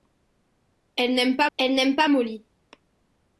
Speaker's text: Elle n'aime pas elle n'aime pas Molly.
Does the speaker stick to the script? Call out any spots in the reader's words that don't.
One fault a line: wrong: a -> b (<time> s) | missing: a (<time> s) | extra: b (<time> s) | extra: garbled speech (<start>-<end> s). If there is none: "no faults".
no faults